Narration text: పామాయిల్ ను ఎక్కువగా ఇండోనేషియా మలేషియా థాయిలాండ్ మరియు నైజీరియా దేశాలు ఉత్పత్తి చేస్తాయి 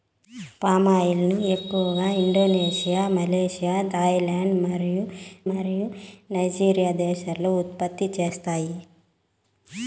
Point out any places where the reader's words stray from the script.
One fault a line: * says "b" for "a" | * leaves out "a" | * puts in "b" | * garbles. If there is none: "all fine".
* puts in "మరియు"